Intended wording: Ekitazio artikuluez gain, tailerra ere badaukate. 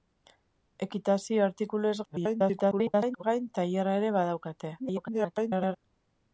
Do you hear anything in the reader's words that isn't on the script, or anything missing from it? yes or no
yes